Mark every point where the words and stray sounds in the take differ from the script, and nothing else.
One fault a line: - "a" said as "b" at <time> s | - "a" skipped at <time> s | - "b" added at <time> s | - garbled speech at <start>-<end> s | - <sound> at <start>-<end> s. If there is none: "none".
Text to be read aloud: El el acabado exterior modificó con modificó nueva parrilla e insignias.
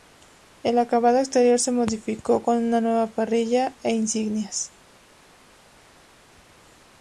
- "el" skipped at 0.8 s
- "se" added at 1.6 s
- "modificó" said as "una" at 2.6 s